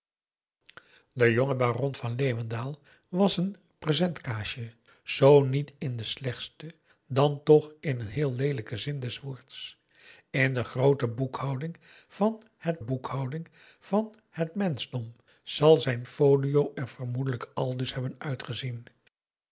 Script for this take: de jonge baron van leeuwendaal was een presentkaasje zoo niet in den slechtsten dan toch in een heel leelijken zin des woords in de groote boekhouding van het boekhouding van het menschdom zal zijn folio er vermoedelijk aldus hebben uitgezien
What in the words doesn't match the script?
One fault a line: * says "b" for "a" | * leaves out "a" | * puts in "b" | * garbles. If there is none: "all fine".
all fine